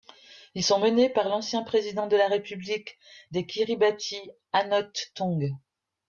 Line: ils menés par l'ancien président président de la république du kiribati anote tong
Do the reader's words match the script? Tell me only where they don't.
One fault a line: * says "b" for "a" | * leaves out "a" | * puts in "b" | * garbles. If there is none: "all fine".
* puts in "sont"
* leaves out "président"
* says "des" for "du"